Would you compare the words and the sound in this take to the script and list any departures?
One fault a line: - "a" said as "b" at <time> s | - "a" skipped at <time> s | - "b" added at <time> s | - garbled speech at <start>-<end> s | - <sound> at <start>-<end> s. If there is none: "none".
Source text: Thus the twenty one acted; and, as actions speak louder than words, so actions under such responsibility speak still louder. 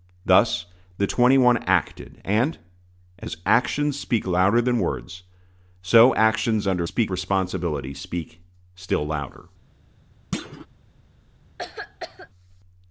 - "such" said as "speak" at 6.8 s
- thud at 10.3-10.7 s
- cough at 11.6-12.3 s